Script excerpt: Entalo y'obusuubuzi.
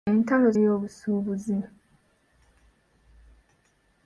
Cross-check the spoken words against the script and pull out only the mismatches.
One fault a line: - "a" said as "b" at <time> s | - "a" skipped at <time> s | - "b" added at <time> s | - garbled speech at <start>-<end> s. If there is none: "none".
none